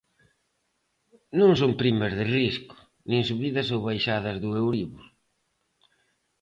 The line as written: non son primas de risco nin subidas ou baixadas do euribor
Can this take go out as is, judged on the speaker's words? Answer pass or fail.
pass